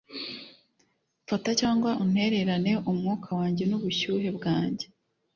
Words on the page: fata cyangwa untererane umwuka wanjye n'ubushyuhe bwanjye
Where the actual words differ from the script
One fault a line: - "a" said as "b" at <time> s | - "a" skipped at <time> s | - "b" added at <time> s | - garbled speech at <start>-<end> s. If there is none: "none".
none